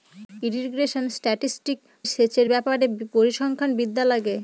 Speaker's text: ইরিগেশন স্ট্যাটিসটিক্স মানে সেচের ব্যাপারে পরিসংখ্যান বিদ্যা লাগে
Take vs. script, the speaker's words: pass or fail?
fail